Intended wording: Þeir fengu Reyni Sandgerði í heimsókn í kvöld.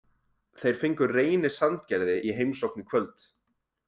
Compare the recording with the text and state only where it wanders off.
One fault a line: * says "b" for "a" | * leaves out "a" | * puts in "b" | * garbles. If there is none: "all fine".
all fine